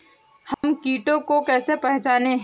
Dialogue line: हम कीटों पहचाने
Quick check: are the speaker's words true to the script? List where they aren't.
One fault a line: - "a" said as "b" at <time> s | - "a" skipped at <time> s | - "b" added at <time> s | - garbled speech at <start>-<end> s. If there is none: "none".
- "को कैसे" added at 1.2 s